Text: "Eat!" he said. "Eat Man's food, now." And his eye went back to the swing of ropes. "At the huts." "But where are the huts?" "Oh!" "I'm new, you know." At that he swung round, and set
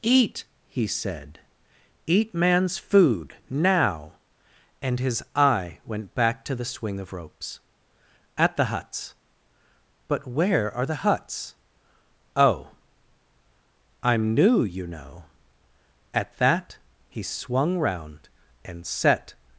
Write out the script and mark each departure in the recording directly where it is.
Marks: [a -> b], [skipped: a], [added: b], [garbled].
"Eat!" he said. "Eat Man's food, now." And his eye went back to the swing of ropes. "At the huts." "But where are the huts?" "Oh!" "I'm new, you know." At that he swung round, and set